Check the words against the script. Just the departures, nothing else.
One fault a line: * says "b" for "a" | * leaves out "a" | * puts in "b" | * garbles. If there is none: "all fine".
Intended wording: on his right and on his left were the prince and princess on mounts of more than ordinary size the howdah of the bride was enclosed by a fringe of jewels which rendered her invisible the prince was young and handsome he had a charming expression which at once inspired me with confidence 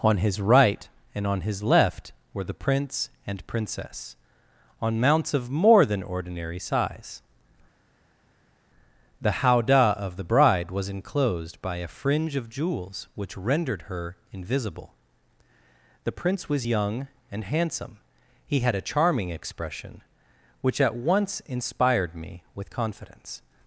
all fine